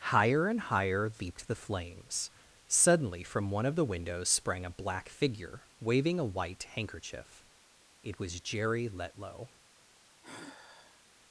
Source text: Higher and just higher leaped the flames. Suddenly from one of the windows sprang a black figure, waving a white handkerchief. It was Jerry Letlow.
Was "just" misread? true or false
true